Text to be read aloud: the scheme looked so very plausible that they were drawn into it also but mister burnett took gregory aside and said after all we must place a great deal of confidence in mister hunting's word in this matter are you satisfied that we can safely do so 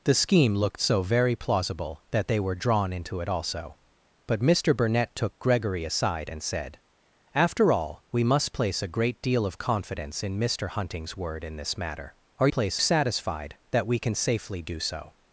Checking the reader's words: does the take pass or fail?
fail